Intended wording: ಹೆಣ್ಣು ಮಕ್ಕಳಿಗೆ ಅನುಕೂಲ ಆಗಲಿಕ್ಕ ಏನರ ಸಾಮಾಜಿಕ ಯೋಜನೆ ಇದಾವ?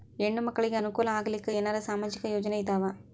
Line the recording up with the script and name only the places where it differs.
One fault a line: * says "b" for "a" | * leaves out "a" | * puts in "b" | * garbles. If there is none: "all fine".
all fine